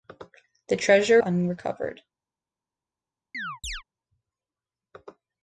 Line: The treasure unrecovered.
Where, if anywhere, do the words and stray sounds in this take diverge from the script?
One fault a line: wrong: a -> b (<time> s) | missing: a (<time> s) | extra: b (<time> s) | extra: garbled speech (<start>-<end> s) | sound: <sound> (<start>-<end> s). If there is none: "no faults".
sound: chirp (3.3-3.8 s)